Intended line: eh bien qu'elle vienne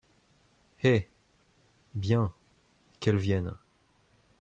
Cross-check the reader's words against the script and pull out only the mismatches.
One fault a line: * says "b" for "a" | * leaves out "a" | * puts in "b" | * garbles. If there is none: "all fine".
all fine